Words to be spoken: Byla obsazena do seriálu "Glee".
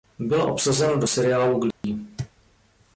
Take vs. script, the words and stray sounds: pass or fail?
fail